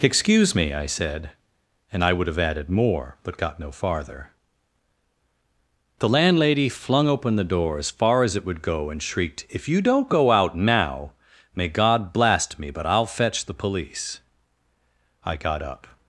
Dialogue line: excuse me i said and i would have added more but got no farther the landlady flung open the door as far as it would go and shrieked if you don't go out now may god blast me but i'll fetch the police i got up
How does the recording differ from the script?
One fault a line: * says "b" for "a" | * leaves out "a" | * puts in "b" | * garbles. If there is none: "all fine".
all fine